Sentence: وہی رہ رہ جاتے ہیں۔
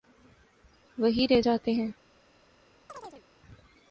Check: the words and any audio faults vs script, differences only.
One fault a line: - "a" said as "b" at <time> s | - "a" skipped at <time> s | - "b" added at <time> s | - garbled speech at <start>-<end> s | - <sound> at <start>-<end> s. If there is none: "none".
- "رہ" skipped at 1.4 s
- chirp at 2.9-3.2 s